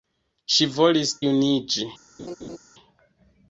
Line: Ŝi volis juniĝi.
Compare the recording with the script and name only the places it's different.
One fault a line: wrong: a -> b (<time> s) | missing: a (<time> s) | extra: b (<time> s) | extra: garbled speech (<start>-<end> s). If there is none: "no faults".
no faults